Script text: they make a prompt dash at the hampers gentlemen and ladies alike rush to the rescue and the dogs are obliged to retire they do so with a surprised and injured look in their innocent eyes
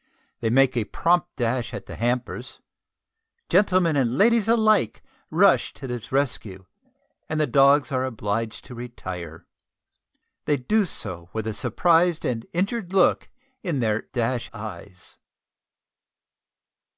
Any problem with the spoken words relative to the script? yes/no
yes